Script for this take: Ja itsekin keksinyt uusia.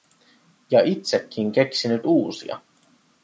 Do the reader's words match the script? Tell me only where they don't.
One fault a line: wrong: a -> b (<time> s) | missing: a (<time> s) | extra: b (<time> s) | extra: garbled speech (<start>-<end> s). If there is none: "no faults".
no faults